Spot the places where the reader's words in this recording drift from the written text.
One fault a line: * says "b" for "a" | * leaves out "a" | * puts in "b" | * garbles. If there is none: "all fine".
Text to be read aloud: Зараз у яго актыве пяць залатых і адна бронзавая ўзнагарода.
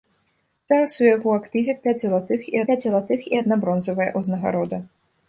* puts in "пяць залатых і"